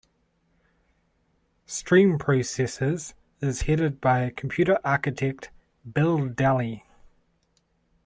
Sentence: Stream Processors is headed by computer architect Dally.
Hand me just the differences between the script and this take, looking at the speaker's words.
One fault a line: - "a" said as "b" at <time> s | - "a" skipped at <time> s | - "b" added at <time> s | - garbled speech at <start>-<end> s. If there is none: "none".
- "Bill" added at 5.9 s